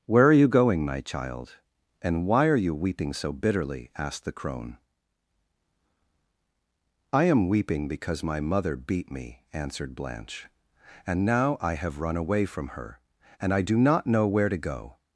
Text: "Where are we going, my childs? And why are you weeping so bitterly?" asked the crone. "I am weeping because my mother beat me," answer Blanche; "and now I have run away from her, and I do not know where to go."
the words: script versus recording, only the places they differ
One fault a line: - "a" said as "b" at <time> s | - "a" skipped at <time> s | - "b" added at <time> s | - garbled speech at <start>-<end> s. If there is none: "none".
- "we" said as "you" at 0.3 s
- "childs" said as "child" at 1.0 s
- "answer" said as "answered" at 9.5 s